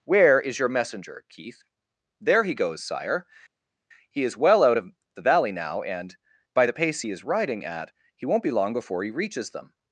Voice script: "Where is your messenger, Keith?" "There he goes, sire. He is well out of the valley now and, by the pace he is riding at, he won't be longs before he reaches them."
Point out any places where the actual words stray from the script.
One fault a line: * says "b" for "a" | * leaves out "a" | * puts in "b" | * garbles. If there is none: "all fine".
* says "long" for "longs"